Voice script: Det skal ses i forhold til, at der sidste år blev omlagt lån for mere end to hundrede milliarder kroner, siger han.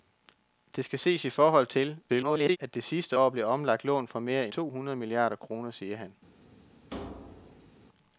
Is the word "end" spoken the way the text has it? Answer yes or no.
no